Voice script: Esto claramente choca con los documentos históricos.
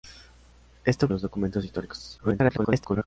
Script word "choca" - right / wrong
wrong